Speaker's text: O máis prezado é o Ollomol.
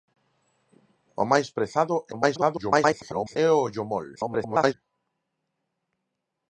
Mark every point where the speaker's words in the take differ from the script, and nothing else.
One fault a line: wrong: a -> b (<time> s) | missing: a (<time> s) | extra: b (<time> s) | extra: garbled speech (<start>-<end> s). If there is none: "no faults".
extra: garbled speech (2.1-3.4 s)
extra: garbled speech (4.2-4.7 s)